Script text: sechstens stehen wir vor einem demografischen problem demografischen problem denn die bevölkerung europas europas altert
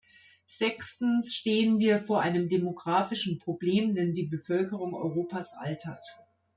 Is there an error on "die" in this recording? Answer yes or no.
no